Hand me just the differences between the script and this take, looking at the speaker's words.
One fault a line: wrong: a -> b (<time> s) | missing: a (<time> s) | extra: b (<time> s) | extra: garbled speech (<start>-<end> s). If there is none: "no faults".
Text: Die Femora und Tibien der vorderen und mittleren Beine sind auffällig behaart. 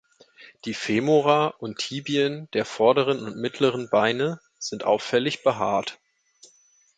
no faults